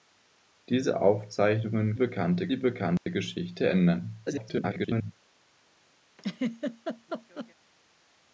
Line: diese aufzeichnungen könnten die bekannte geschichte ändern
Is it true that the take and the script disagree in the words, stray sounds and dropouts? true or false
true